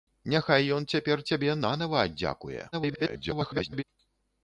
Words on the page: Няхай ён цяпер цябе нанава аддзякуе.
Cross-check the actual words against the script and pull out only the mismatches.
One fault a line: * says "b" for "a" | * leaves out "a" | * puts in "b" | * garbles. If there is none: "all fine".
* garbles